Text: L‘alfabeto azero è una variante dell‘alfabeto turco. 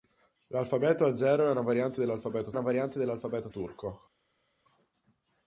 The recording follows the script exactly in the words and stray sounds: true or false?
false